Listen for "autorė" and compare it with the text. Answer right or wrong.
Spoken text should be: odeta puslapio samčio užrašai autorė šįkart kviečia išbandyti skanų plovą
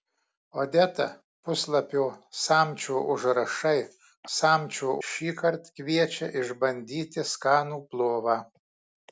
wrong